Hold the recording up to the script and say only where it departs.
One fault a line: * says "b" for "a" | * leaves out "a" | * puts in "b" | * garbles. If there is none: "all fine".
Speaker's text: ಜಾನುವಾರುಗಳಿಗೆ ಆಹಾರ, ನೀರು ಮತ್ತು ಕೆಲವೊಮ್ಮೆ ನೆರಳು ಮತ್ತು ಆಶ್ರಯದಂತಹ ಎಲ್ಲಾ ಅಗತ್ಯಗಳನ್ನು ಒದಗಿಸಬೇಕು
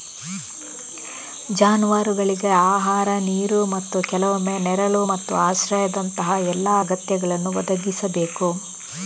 all fine